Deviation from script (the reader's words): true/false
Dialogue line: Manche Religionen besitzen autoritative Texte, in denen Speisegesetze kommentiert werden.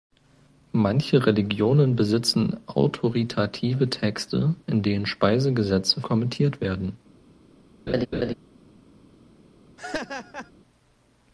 false